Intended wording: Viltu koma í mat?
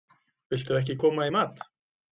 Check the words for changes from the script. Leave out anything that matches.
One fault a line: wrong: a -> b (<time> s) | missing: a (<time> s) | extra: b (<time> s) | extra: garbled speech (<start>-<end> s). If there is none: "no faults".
extra: ekki (0.8 s)